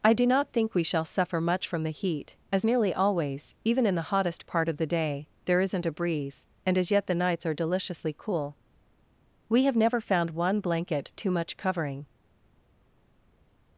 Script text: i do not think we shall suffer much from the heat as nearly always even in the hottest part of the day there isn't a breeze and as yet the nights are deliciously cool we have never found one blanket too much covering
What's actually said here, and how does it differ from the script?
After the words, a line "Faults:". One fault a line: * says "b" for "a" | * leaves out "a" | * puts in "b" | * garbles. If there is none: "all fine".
i do not think we shall suffer much from the heat as nearly always even in the hottest part of the day there isn't a breeze and as yet the nights are deliciously cool we have never found one blanket too much covering
Faults:
all fine